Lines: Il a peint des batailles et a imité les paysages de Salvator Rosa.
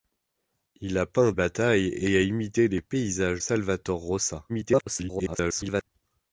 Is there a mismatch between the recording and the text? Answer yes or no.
yes